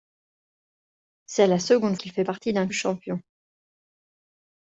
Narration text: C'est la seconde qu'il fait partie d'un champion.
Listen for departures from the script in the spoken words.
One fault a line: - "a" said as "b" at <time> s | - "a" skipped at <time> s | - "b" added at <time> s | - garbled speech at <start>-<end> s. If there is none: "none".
none